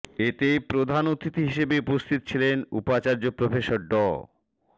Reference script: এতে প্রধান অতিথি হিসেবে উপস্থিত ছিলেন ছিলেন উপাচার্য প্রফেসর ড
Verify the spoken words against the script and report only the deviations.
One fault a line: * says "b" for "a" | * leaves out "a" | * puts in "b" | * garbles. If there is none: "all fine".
* leaves out "ছিলেন"